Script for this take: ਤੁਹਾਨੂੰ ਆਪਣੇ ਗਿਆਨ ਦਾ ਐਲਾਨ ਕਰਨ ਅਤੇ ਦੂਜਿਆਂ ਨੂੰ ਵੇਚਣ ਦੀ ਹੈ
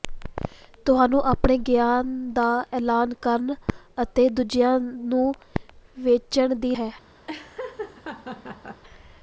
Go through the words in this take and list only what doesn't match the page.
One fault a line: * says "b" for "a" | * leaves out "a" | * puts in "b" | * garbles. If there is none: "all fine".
all fine